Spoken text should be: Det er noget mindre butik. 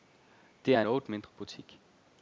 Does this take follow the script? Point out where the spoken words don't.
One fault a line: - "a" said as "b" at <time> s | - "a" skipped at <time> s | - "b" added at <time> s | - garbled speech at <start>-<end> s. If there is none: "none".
none